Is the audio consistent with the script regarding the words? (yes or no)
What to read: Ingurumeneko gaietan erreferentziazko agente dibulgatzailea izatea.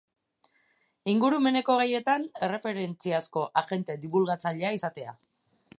yes